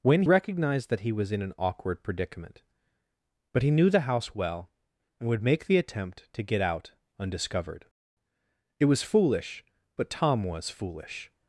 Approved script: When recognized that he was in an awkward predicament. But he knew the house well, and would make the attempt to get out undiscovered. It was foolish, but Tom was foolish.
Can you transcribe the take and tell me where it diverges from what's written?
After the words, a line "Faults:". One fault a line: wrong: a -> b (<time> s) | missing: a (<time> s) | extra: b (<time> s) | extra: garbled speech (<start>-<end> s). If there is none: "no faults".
When recognized that he was in an awkward predicament. But he knew the house well, and would make the attempt to get out undiscovered. It was foolish, but Tom was foolish.
Faults:
no faults